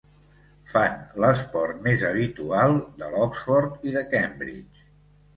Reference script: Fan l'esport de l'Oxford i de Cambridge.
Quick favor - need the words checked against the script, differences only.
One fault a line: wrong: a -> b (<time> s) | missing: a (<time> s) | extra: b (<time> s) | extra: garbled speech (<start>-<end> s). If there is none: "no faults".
extra: més habitual (1.9 s)